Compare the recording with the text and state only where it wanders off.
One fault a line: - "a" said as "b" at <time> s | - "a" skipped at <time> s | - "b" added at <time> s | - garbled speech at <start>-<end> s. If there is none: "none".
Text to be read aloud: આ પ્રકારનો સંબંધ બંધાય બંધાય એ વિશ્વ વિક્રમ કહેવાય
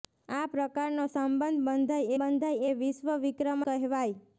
none